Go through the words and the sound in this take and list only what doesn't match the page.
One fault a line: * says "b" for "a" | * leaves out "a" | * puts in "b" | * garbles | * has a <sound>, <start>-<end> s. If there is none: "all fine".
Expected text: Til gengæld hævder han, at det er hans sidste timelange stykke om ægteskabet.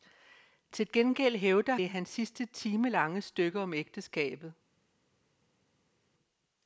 * leaves out "han at"